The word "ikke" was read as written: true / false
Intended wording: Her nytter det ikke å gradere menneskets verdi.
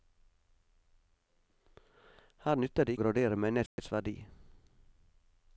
false